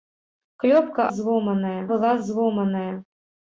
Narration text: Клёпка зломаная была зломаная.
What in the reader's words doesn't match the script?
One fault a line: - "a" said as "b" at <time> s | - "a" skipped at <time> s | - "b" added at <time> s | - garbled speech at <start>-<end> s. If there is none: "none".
none